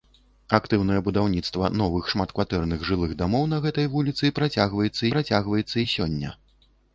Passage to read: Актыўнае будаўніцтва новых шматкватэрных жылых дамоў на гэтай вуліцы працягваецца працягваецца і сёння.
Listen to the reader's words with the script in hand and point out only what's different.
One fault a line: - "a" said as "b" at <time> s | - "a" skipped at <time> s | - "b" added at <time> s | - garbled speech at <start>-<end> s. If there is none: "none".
none